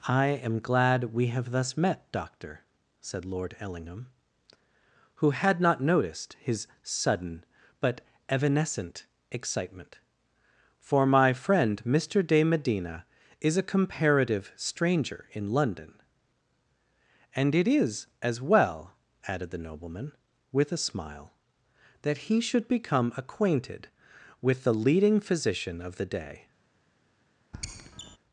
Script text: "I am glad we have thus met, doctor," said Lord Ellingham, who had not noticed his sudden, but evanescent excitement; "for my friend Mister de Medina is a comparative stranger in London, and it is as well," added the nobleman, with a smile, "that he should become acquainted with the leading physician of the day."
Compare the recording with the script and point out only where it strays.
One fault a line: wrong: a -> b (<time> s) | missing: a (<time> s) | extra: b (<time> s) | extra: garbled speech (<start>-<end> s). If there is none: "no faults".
no faults